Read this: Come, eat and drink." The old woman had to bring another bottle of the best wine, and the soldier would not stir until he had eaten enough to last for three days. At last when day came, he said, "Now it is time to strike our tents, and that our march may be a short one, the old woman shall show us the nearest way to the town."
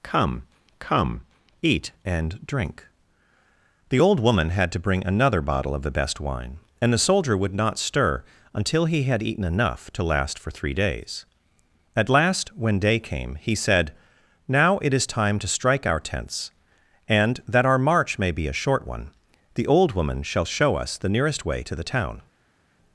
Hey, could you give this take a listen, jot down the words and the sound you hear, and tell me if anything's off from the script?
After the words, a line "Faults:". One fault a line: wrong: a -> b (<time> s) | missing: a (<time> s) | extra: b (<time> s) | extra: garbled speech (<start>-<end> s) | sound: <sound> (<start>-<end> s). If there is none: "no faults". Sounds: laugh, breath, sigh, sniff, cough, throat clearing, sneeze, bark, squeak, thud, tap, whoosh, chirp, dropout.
Come come, eat and drink." The old woman had to bring another bottle of the best wine, and the soldier would not stir until he had eaten enough to last for three days. At last when day came, he said, "Now it is time to strike our tents, and that our march may be a short one, the old woman shall show us the nearest way to the town."
Faults:
extra: come (0.8 s)